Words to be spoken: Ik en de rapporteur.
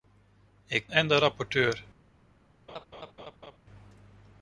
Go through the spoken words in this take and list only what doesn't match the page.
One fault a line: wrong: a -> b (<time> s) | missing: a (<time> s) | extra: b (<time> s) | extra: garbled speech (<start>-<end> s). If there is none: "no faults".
no faults